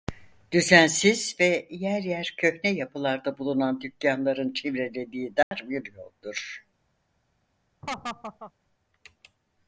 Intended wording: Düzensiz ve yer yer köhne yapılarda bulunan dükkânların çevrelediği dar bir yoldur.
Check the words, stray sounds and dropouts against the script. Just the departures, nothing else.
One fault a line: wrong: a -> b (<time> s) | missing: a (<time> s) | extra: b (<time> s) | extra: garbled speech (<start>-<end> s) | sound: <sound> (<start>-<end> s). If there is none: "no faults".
sound: dropout (5.4-5.5 s)
sound: laugh (7.8-8.5 s)